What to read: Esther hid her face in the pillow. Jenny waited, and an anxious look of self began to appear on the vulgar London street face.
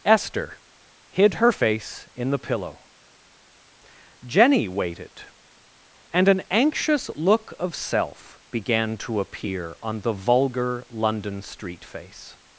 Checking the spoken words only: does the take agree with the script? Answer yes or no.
yes